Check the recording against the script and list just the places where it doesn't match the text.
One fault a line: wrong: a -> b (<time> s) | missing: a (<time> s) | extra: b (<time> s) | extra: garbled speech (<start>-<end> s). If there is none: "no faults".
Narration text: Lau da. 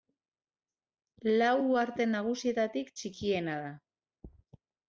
extra: uharte nagusietatik txikiena (1.6 s)